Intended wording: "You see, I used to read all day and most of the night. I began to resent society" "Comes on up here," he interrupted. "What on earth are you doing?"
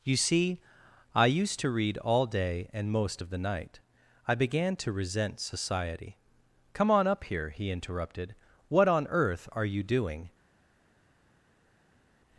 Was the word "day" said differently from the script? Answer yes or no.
no